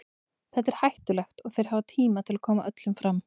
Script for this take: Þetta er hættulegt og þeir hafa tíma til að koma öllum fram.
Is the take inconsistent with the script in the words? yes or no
no